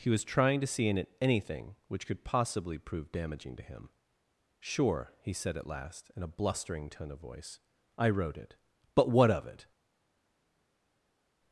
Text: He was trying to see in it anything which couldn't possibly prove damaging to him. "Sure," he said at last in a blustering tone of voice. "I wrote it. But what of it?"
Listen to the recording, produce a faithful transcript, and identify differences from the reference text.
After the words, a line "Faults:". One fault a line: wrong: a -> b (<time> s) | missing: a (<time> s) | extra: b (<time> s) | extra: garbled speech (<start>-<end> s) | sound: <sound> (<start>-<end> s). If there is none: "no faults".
He was trying to see in it anything which could possibly prove damaging to him. "Sure," he said at last in a blustering tone of voice. "I wrote it. But what of it?"
Faults:
wrong: couldn't -> could (2.1 s)